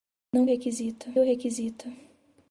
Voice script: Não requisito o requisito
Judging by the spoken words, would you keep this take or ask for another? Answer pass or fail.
pass